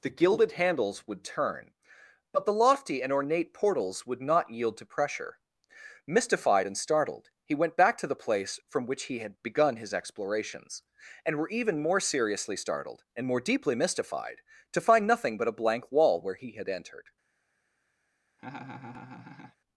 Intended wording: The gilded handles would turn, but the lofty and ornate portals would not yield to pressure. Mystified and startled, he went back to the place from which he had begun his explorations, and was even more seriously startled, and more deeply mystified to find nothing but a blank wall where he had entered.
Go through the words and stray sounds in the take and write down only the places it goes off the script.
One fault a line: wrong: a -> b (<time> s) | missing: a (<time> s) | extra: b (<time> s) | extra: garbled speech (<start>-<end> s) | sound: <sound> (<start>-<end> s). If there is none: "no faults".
wrong: was -> were (11.4 s)
sound: laugh (18.4-19.6 s)